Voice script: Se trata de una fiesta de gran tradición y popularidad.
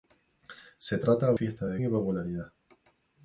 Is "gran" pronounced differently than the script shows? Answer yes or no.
yes